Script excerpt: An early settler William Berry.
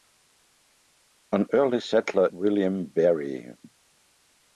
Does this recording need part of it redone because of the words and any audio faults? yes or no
no